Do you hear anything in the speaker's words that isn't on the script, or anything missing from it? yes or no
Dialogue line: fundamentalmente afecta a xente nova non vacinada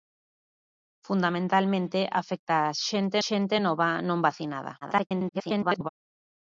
yes